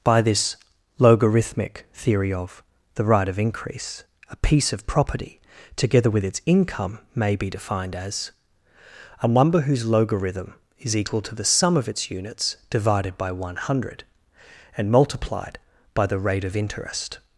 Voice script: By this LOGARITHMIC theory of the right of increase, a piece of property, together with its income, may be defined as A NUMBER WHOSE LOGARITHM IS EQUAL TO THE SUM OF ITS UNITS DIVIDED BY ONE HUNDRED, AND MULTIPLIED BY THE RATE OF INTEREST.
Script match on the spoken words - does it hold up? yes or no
yes